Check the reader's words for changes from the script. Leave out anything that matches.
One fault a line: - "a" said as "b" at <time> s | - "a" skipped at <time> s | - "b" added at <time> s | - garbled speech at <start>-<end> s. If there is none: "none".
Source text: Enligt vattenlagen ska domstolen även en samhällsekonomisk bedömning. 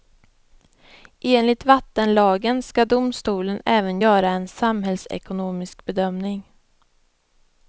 - "göra" added at 4.0 s